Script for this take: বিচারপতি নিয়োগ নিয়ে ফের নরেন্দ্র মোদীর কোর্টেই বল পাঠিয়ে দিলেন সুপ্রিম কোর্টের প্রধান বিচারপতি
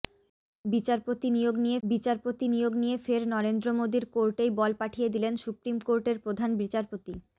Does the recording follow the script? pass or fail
fail